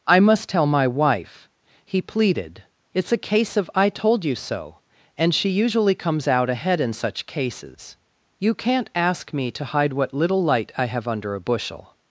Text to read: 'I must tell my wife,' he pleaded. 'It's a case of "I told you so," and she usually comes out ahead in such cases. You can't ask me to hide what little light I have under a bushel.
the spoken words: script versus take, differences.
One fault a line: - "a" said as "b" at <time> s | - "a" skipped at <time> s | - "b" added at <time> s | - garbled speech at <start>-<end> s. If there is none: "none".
none